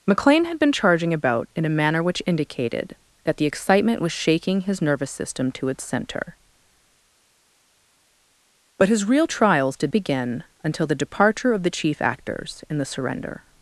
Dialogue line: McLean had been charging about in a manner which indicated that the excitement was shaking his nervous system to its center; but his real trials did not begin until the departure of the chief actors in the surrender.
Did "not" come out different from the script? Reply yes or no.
yes